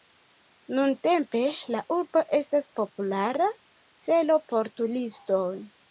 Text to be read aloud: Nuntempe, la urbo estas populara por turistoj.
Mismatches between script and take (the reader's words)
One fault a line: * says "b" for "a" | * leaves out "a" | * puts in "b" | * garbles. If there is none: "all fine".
* puts in "celo"